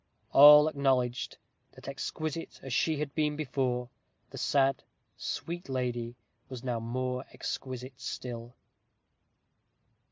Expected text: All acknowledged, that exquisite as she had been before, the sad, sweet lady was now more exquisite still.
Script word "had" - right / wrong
right